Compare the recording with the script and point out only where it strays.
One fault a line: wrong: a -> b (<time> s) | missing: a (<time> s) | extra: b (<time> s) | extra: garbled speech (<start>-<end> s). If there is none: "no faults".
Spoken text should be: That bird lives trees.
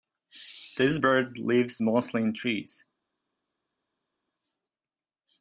wrong: That -> This (0.8 s)
extra: mostly in (1.8 s)